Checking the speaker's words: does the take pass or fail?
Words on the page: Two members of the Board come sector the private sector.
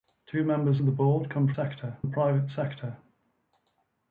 pass